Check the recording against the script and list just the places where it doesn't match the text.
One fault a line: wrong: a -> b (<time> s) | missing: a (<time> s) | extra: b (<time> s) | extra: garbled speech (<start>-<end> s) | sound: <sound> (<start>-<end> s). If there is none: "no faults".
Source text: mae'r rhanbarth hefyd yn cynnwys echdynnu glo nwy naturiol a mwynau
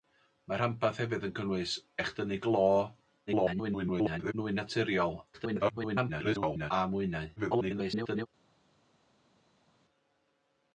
extra: garbled speech (3.3-4.3 s)
extra: garbled speech (5.3-6.7 s)
extra: garbled speech (7.4-8.3 s)